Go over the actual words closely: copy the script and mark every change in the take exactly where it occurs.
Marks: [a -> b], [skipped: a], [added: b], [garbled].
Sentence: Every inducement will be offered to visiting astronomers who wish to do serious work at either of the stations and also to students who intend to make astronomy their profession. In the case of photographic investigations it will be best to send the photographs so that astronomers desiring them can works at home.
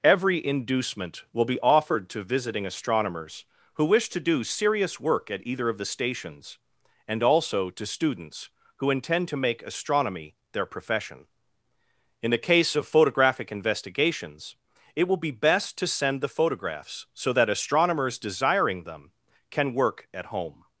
Every inducement will be offered to visiting astronomers who wish to do serious work at either of the stations and also to students who intend to make astronomy their profession. In the case of photographic investigations it will be best to send the photographs so that astronomers desiring them can [works -> work] at home.